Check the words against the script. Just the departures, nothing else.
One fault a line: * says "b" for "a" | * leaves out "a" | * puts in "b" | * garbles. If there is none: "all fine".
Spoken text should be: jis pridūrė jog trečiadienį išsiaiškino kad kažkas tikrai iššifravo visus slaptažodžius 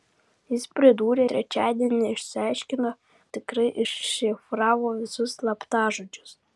* leaves out "jog"
* leaves out "kad kažkas"